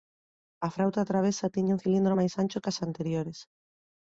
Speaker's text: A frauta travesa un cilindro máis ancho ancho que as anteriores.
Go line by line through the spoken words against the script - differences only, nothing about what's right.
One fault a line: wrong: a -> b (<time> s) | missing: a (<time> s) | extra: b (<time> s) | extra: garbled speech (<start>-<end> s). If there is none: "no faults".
extra: tiña (1.5 s)
missing: ancho (2.6 s)